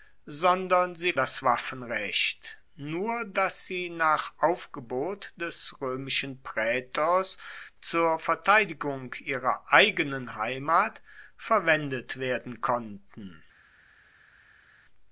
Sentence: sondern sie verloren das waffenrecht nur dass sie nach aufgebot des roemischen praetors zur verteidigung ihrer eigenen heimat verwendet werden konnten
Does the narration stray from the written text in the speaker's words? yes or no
yes